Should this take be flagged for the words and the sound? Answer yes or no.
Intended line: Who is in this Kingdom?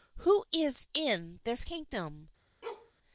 yes